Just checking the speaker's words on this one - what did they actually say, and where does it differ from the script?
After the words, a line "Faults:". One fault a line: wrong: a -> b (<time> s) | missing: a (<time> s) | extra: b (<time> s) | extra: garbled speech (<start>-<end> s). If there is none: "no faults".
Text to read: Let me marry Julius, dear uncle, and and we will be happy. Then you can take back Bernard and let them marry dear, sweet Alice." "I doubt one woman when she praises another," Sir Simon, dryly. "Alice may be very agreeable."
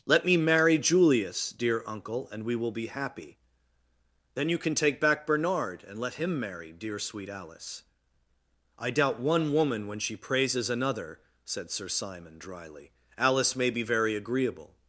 Let me marry Julius, dear uncle, and we will be happy. Then you can take back Bernard and let him marry dear, sweet Alice." "I doubt one woman when she praises another," said Sir Simon, dryly. "Alice may be very agreeable."
Faults:
missing: and (2.4 s)
wrong: them -> him (6.2 s)
extra: said (11.4 s)